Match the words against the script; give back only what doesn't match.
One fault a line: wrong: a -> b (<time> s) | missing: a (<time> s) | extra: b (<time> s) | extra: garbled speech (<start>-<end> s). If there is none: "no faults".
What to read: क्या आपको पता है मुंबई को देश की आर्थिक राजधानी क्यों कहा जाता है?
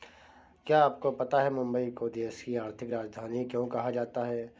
no faults